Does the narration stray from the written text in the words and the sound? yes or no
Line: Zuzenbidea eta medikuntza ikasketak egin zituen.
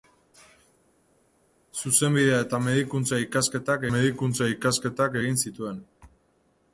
yes